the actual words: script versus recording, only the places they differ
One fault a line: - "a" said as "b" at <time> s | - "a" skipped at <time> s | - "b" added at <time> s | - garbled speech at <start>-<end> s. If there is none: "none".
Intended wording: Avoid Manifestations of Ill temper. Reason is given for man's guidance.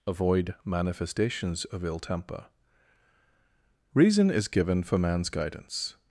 none